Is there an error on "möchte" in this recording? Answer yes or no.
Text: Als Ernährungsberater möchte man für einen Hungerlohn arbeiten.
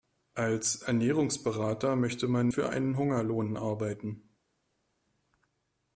no